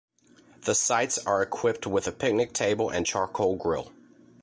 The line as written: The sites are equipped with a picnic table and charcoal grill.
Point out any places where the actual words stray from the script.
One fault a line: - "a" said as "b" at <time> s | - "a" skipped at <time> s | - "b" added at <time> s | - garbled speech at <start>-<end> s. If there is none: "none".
none